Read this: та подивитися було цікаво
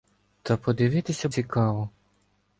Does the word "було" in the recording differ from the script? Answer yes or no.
yes